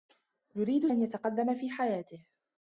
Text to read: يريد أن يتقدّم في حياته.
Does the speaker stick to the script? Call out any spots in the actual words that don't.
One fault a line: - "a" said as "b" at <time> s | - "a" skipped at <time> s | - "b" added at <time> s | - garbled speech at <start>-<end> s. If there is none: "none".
none